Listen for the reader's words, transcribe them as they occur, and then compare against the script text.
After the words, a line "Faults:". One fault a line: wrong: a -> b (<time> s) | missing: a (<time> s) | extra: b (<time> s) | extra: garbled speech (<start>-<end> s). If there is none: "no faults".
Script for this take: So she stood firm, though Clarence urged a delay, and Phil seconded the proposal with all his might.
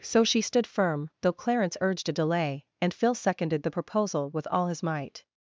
So she stood firm, though Clarence urged a delay, and Phil seconded the proposal with all his might.
Faults:
no faults